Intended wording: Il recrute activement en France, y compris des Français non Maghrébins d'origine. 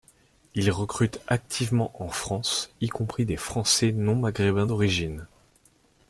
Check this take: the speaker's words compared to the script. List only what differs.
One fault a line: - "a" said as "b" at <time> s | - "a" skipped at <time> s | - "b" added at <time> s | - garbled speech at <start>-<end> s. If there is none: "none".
none